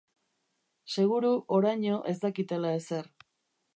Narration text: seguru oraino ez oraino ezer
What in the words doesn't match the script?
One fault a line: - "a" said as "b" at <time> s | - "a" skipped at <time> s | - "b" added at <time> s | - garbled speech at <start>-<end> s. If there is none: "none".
- "oraino" said as "dakitela" at 2.2 s